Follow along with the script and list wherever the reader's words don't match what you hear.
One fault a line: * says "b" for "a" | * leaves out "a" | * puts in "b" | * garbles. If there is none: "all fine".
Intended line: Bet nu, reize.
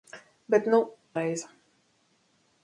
all fine